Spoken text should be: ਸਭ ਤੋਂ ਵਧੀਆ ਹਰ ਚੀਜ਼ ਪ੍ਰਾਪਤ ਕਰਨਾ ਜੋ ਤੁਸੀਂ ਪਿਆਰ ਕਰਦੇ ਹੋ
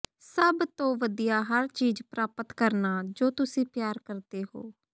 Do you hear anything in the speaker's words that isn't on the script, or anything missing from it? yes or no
no